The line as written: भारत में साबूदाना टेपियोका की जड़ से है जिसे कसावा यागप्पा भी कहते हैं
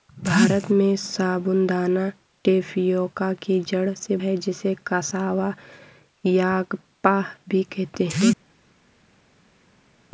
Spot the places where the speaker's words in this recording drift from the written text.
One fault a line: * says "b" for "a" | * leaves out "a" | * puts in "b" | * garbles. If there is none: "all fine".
all fine